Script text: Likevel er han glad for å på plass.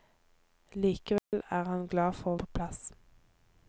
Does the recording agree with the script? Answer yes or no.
yes